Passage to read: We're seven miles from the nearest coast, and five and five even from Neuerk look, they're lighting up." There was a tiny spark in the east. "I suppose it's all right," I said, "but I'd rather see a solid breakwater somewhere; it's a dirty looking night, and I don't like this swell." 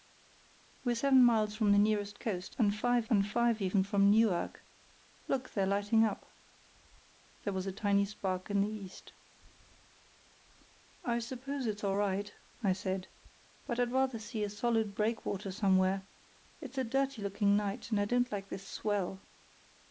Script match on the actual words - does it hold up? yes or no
yes